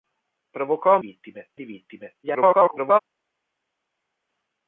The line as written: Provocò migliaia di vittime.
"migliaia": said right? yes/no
no